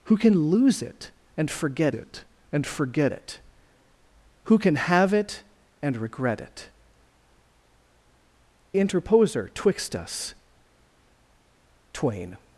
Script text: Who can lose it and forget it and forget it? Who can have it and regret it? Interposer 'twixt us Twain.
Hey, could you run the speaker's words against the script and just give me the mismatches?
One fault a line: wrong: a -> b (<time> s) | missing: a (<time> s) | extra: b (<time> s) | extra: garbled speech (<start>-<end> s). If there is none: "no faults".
no faults